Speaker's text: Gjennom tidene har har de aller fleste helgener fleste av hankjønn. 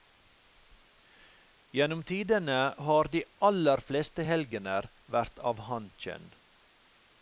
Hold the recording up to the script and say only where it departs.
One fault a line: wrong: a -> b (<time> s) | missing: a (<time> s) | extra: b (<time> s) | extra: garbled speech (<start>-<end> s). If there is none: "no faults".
missing: har (3.1 s)
wrong: fleste -> vært (5.2 s)